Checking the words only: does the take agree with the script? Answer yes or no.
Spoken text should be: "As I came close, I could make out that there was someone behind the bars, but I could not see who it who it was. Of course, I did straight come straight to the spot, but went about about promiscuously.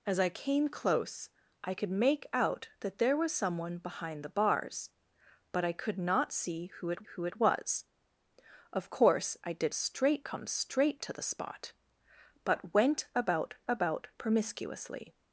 yes